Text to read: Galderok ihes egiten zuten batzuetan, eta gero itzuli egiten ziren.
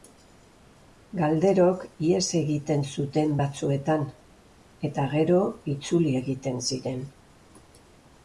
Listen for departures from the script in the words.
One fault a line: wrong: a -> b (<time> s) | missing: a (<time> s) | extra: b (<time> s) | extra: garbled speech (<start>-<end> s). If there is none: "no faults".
no faults